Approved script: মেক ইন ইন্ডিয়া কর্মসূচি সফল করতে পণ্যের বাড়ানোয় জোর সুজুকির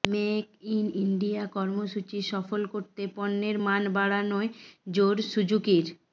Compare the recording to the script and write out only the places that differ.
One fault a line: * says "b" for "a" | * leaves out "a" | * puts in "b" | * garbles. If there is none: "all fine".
* puts in "মান"